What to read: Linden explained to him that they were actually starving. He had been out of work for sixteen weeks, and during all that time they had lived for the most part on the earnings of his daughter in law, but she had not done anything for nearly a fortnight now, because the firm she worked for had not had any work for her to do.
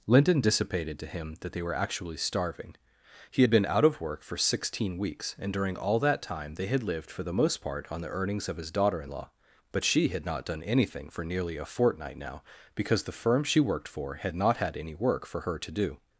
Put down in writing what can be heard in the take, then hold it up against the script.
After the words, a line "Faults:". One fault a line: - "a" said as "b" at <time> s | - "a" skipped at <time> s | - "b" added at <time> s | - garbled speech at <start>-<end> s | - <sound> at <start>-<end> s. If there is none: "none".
Linden dissipated to him that they were actually starving. He had been out of work for sixteen weeks, and during all that time they had lived for the most part on the earnings of his daughter in law, but she had not done anything for nearly a fortnight now, because the firm she worked for had not had any work for her to do.
Faults:
- "explained" said as "dissipated" at 0.4 s